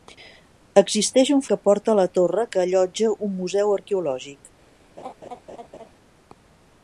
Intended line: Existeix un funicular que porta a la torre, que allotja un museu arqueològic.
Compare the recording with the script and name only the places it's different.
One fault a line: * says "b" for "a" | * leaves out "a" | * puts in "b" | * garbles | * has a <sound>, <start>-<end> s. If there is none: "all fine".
* leaves out "funicular"
* has a laugh, 5.0-5.9 s